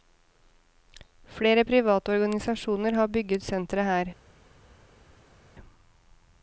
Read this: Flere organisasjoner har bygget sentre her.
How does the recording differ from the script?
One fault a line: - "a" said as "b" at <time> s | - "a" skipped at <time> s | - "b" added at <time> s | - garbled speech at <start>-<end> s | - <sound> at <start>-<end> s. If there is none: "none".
- "private" added at 1.7 s